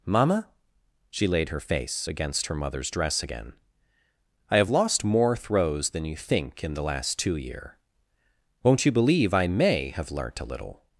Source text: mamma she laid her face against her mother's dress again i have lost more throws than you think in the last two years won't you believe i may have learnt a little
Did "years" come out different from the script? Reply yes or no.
yes